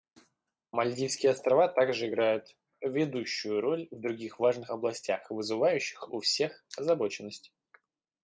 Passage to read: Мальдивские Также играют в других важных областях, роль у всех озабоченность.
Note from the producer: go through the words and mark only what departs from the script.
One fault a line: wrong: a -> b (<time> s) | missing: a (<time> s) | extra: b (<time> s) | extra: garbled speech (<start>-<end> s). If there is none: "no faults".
extra: Острова (1.3 s)
extra: ведущую роль (2.8 s)
wrong: роль -> вызывающих (5.3 s)